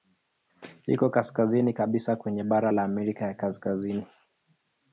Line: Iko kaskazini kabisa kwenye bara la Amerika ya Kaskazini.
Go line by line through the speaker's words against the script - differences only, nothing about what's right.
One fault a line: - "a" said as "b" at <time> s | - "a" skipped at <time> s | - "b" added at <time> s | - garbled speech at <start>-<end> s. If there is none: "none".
none